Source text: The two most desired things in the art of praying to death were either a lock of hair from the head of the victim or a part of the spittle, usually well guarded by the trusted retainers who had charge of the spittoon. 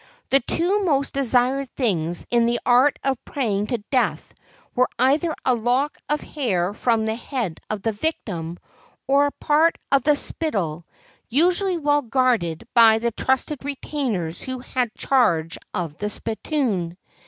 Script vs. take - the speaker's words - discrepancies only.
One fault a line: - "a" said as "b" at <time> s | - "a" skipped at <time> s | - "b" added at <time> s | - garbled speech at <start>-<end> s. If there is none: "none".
none